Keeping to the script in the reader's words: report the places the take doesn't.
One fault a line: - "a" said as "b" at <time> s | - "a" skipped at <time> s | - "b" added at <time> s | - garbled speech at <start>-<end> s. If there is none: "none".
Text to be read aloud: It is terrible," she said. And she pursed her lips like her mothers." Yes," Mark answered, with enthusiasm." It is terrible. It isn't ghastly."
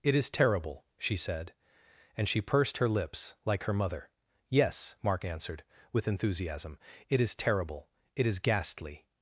- "mothers" said as "mother" at 3.7 s
- "isn't" said as "is" at 8.3 s